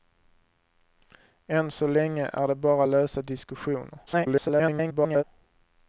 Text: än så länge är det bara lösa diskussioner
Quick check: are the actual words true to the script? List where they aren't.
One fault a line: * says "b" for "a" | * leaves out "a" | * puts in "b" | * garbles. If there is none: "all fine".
* garbles